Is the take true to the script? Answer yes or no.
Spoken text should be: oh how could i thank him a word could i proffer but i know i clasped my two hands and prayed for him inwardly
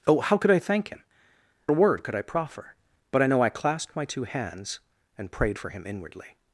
yes